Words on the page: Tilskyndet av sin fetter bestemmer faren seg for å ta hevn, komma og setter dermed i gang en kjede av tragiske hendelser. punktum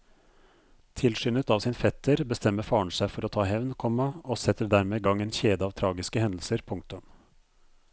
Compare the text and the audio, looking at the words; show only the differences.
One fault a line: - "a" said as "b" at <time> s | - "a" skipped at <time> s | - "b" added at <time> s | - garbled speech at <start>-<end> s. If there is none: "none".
none